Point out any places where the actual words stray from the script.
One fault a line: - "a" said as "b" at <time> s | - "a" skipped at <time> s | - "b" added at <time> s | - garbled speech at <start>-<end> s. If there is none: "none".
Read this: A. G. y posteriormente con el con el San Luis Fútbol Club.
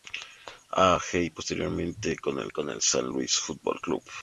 none